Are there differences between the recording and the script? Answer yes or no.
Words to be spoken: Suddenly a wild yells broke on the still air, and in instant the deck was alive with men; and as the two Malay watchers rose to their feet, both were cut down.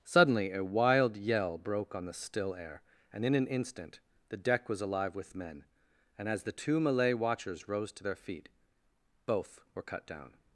yes